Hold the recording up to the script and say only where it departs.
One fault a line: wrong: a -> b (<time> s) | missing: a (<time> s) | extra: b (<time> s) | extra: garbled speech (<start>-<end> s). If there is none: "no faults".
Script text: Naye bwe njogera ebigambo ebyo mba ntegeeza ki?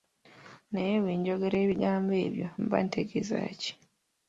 no faults